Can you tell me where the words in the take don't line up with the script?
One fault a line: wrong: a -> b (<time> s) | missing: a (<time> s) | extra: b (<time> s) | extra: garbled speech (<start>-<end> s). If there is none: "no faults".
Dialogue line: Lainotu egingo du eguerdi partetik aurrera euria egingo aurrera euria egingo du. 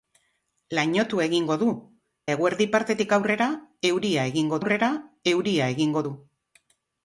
no faults